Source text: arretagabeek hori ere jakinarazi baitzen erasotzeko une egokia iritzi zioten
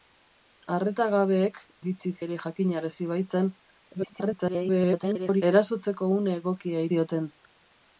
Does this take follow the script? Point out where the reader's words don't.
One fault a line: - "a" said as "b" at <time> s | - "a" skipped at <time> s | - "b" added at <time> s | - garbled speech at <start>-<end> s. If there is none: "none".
- "hori" said as "iritzi" at 1.8 s
- garbled speech at 3.9-5.4 s
- "iritzi" skipped at 6.8 s